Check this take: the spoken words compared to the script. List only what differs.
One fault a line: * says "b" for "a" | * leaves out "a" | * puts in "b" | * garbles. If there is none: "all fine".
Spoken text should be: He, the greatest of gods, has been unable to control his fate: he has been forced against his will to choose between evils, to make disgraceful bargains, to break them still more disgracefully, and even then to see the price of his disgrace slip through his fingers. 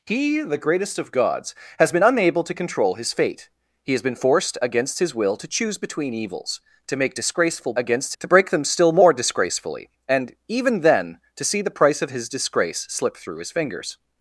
* says "against" for "bargains"